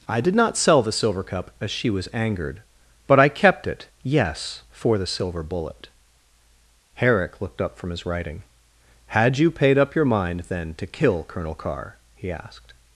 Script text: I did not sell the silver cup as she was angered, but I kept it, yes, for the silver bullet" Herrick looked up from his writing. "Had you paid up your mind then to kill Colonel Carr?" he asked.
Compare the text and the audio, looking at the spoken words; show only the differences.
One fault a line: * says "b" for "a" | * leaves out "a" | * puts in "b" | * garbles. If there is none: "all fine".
all fine